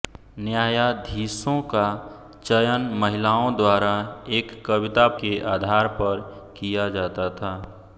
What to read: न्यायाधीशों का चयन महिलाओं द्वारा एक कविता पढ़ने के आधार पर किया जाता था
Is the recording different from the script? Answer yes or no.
yes